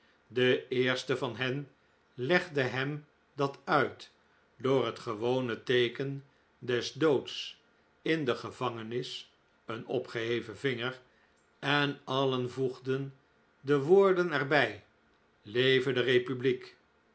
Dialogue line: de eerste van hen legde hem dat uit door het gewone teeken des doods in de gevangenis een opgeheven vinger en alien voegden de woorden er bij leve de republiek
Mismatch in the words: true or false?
false